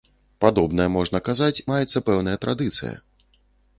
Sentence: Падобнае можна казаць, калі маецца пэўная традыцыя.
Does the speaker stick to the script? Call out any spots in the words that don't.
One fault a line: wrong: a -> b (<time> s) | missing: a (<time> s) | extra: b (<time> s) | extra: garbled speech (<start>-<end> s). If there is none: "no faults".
missing: калі (1.6 s)